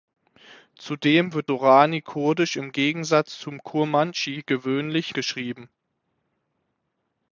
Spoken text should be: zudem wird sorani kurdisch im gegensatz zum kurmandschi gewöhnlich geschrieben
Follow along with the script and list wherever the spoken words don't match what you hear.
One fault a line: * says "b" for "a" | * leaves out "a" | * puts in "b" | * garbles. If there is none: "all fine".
all fine